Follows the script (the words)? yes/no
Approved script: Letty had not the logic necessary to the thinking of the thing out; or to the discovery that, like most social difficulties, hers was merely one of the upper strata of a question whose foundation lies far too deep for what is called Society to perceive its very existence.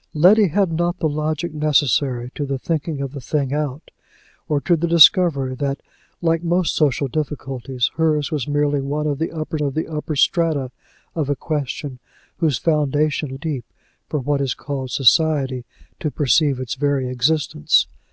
no